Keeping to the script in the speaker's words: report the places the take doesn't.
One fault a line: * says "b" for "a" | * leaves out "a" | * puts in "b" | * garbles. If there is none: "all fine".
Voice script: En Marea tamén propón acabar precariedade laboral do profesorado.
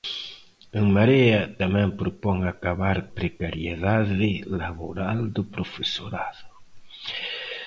all fine